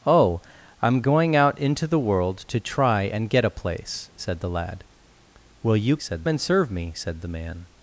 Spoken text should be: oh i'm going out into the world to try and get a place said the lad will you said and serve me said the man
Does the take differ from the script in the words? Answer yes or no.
no